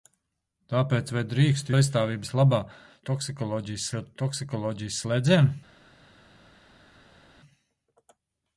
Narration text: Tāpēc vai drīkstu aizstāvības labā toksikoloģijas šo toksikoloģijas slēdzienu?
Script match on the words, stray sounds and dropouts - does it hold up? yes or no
yes